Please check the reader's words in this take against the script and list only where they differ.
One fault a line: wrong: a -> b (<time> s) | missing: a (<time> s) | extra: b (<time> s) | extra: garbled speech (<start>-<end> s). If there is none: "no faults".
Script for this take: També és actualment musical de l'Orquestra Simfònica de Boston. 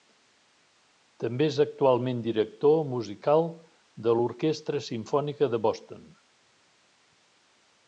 extra: director (2.3 s)